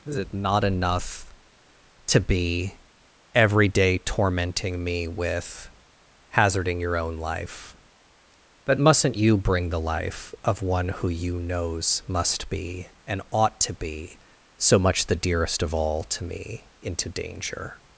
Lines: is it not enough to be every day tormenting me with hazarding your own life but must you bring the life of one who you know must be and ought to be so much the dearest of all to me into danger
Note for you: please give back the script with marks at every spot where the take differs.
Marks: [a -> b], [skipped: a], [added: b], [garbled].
is it not enough to be every day tormenting me with hazarding your own life but [must -> mustn't] you bring the life of one who you [know -> knows] must be and ought to be so much the dearest of all to me into danger